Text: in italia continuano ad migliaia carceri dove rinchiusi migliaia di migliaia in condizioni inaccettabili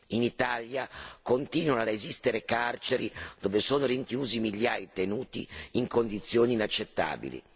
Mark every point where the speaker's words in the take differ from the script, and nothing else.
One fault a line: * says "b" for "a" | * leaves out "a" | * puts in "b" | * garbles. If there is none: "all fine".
* says "esistere" for "migliaia"
* puts in "sono"
* says "detenuti" for "migliaia"